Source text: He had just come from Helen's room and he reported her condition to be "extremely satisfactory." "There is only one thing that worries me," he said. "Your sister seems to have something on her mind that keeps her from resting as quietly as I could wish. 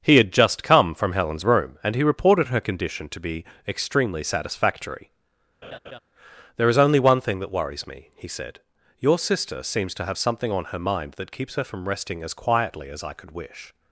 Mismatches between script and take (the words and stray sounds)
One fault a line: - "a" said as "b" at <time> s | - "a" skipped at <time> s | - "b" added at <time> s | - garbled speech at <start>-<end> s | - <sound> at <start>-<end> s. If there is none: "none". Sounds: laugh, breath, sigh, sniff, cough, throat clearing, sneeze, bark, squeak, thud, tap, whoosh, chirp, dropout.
- laugh at 5.6-6.0 s